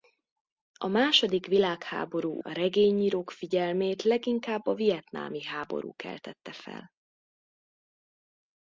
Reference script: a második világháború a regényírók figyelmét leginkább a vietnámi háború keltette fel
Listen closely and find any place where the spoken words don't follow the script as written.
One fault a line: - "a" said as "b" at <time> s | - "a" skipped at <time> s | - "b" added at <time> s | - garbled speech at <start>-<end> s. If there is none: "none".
none